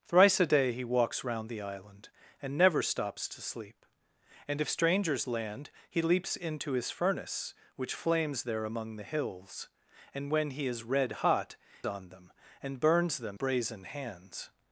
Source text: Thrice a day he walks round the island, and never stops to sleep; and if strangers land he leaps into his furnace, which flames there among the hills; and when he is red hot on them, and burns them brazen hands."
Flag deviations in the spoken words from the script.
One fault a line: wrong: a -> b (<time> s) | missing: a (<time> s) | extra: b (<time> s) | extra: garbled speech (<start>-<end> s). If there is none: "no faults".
no faults